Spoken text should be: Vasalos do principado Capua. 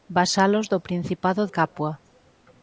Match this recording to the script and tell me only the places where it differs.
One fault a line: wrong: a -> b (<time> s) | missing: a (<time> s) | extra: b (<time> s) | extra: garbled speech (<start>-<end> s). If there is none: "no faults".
no faults